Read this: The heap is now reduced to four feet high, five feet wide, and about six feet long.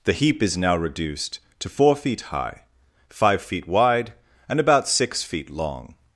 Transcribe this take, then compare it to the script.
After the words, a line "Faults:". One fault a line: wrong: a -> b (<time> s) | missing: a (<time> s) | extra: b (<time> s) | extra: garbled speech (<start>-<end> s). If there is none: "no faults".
The heap is now reduced to four feet high, five feet wide, and about six feet long.
Faults:
no faults